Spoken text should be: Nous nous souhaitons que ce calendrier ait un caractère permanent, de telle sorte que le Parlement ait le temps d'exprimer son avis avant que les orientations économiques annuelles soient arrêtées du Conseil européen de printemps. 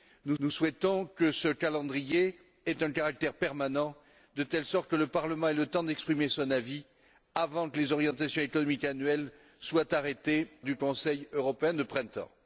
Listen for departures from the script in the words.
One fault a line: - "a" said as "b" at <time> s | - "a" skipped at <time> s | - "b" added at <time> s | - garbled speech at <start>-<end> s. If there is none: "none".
none